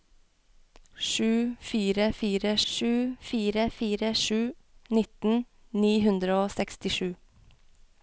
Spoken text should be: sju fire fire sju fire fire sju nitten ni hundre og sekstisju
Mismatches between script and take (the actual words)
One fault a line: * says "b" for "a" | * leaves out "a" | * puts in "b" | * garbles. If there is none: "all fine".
all fine